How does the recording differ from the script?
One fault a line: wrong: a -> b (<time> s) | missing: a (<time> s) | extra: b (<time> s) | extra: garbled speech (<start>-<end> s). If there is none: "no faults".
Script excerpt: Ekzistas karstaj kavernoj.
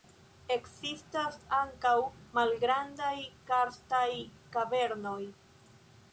extra: ankaŭ malgrandaj (1.6 s)